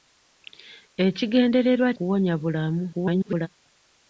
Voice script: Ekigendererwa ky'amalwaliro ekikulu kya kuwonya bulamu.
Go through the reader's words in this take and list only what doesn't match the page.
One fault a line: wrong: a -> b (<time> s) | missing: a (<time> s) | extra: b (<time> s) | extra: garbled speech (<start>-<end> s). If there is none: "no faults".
missing: ky'amalwaliro ekikulu kya (1.9 s)
extra: garbled speech (2.9-3.5 s)